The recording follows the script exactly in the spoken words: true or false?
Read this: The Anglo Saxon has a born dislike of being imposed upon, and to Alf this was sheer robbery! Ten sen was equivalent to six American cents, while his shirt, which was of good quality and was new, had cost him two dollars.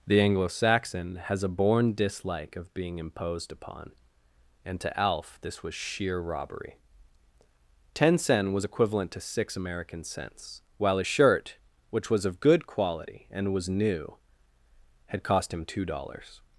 false